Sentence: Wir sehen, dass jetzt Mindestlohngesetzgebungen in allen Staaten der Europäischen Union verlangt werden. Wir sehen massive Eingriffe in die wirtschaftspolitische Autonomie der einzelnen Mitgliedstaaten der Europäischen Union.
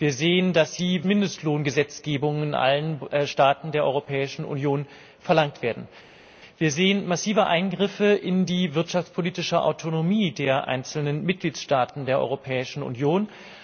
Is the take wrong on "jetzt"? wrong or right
wrong